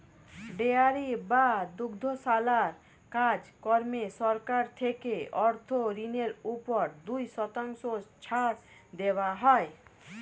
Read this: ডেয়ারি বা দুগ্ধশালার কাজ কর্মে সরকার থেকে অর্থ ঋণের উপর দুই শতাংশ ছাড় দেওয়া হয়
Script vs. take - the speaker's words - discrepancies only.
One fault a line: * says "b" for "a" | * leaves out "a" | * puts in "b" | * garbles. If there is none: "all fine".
all fine